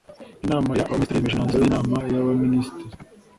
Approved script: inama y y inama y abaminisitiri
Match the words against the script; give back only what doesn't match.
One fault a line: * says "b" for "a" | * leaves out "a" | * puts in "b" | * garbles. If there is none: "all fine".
* puts in "abaminisitiri yemeje imyanzuro"